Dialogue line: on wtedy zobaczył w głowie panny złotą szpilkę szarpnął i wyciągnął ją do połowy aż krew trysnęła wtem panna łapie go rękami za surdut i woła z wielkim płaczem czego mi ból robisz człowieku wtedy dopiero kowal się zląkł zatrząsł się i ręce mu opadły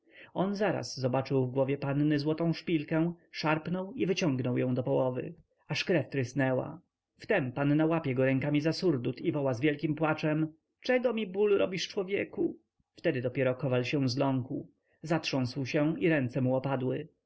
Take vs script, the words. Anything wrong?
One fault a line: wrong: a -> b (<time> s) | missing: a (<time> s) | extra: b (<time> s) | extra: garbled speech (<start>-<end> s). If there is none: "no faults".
wrong: wtedy -> zaraz (0.6 s)